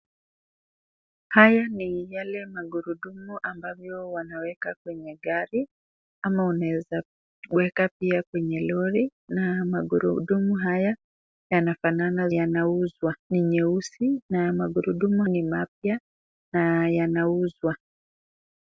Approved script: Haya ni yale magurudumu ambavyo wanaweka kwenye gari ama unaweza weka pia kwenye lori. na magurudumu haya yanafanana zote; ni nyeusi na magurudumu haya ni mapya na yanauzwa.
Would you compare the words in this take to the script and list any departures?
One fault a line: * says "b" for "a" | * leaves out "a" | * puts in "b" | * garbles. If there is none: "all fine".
* says "yanauzwa" for "zote"
* leaves out "haya"